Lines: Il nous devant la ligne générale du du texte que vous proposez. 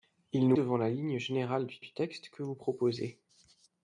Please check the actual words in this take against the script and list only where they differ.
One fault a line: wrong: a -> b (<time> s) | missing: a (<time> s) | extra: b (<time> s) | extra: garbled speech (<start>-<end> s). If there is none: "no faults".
no faults